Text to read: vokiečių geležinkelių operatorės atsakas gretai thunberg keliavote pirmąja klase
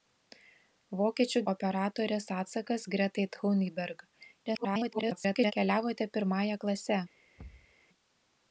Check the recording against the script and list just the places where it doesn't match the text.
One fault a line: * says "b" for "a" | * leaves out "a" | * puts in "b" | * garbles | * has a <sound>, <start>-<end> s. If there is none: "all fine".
* leaves out "geležinkelių"
* garbles
* has a thud, 7.4-7.7 s